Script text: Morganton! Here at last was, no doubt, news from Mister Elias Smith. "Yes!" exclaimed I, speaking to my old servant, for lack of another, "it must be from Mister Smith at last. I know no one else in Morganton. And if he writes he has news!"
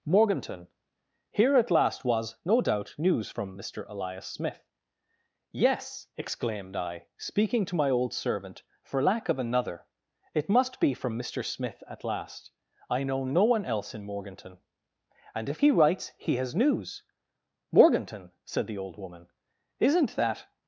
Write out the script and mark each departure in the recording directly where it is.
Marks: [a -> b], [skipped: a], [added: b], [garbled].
Morganton! Here at last was, no doubt, news from Mister Elias Smith. "Yes!" exclaimed I, speaking to my old servant, for lack of another, "it must be from Mister Smith at last. I know no one else in Morganton. And if he writes he has news!" [added: Morganton said the old woman isn't that]